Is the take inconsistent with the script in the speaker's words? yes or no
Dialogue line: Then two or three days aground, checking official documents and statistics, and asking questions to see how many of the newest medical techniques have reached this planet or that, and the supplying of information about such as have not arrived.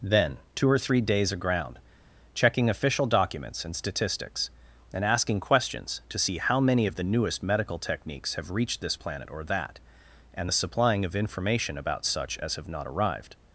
no